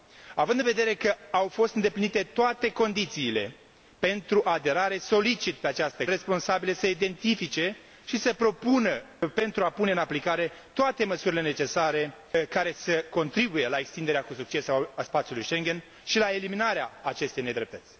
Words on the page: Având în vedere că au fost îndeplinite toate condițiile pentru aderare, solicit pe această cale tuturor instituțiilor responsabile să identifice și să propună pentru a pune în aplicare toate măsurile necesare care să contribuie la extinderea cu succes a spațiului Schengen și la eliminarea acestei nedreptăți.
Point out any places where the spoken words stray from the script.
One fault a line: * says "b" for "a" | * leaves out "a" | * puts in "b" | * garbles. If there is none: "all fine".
* leaves out "cale tuturor instituțiilor"